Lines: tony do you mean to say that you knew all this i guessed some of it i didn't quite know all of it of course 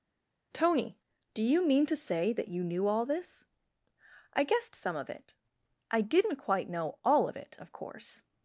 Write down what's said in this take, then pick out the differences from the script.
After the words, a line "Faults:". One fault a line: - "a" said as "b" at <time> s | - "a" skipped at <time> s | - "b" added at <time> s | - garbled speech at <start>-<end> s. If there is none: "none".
tony do you mean to say that you knew all this i guessed some of it i didn't quite know all of it of course
Faults:
none